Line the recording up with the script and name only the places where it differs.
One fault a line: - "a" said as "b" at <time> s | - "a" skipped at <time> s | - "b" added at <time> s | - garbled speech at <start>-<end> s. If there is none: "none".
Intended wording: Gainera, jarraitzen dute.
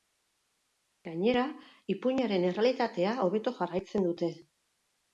- "ipuinaren errealitatea hobeto" added at 2.0 s